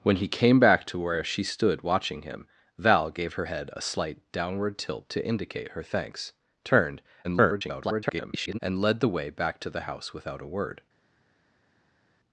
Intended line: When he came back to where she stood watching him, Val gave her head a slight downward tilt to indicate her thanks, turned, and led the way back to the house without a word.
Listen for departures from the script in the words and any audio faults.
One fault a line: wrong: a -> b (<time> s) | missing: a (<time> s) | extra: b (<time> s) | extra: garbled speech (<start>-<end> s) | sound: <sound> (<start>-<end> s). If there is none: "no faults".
extra: garbled speech (7.2-8.6 s)